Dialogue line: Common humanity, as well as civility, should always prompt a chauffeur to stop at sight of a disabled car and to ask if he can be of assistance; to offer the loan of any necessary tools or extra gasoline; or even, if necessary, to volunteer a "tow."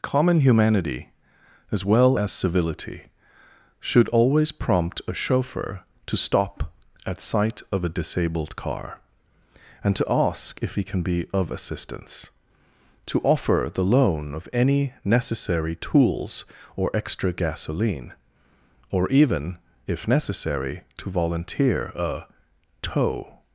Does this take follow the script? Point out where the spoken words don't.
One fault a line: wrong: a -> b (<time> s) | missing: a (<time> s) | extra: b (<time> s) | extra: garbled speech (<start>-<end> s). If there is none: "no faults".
no faults